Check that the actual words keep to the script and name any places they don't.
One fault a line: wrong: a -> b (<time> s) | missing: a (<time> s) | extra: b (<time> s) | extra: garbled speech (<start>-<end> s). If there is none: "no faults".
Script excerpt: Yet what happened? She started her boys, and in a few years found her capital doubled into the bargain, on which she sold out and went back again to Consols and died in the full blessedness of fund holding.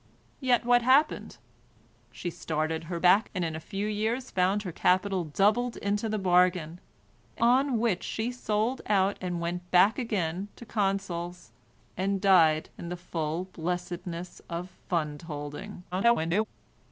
wrong: boys -> back (3.0 s)
extra: garbled speech (15.9-16.5 s)